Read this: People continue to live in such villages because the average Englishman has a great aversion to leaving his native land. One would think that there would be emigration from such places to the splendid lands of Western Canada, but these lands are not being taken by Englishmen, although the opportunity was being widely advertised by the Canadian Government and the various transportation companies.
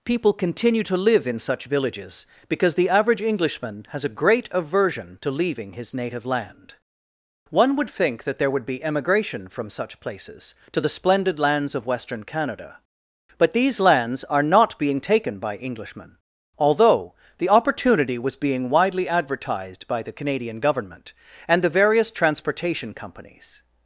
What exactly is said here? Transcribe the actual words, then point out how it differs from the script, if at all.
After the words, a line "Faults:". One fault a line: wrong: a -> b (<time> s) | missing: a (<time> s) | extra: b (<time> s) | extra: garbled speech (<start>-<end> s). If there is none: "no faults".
People continue to live in such villages because the average Englishman has a great aversion to leaving his native land. One would think that there would be emigration from such places to the splendid lands of Western Canada, but these lands are not being taken by Englishmen, although the opportunity was being widely advertised by the Canadian Government and the various transportation companies.
Faults:
no faults